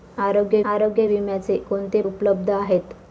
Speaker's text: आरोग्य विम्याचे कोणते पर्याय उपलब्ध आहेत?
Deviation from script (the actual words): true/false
true